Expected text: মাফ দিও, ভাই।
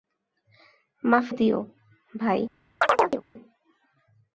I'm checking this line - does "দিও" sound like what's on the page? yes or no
yes